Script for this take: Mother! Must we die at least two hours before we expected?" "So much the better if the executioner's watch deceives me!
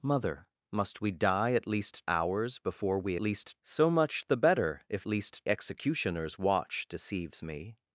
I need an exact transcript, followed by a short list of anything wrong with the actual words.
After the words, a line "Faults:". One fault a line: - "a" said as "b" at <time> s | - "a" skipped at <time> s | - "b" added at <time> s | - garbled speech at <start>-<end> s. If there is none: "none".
Mother! Must we die at least hours before we least?" "So much the better if least executioner's watch deceives me!
Faults:
- "two" skipped at 2.1 s
- "expected" said as "least" at 3.2 s
- "the" said as "least" at 5.1 s